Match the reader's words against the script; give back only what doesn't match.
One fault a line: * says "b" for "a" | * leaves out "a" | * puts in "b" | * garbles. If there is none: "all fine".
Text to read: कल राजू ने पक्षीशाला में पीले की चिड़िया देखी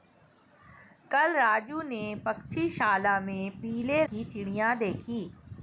all fine